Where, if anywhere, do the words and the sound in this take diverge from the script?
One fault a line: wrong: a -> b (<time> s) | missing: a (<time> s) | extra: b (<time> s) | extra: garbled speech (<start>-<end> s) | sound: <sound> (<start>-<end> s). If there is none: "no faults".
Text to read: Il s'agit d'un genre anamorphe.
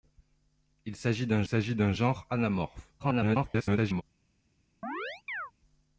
extra: s'agit d'un (1.4 s)
extra: garbled speech (3.0-4.0 s)
sound: chirp (4.8-5.5 s)